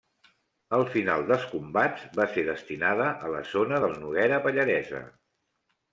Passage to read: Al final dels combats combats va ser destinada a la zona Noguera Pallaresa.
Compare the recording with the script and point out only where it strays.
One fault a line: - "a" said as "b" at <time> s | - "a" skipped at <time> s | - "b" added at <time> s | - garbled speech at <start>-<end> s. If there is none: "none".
- "combats" skipped at 2.1 s
- "del" added at 3.8 s